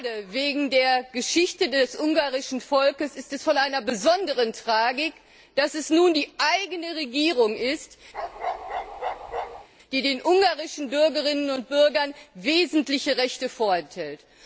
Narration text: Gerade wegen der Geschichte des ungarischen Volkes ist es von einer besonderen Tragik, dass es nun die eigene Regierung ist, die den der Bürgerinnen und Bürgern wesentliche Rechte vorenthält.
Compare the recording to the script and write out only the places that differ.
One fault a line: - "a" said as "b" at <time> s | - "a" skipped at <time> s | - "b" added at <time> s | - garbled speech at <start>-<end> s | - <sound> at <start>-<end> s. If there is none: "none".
- bark at 8.1-9.7 s
- "der" said as "ungarischen" at 10.2 s